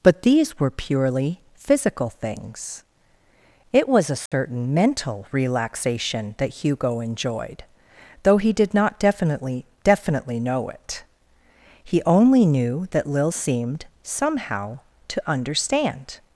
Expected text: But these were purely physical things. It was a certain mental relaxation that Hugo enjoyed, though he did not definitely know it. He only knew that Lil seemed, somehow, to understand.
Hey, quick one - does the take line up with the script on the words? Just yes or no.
no